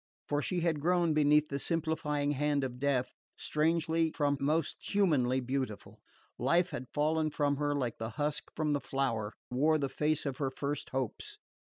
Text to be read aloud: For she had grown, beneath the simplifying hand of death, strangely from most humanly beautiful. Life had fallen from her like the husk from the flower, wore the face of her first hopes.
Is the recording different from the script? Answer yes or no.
no